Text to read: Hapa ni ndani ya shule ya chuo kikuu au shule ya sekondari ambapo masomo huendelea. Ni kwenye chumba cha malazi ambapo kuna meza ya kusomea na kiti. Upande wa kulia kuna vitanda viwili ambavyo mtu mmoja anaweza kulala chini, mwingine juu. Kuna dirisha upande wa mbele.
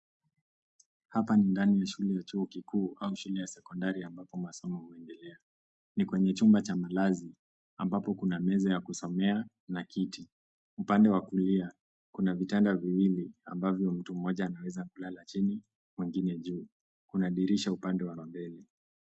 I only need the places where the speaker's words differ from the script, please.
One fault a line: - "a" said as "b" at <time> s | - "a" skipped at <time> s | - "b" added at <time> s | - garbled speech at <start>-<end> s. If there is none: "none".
- "wa" added at 18.1 s